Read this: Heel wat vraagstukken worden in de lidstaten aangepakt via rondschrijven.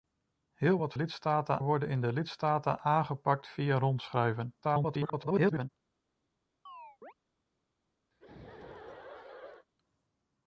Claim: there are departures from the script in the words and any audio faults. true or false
true